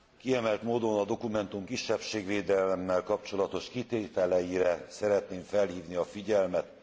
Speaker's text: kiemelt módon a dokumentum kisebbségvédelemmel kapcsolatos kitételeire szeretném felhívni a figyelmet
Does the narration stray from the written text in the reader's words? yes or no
no